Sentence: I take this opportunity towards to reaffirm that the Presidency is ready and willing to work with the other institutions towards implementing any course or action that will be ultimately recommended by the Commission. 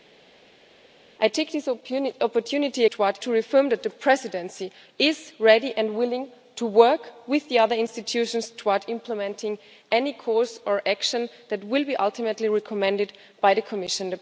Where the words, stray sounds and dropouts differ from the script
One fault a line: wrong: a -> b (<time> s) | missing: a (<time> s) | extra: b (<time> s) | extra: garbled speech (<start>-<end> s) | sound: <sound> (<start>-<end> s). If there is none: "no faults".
no faults